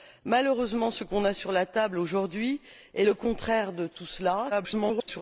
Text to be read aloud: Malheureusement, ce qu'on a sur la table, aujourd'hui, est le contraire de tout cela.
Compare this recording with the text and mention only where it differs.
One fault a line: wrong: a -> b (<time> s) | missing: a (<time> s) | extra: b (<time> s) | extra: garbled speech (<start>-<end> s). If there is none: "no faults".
extra: garbled speech (4.5-5.2 s)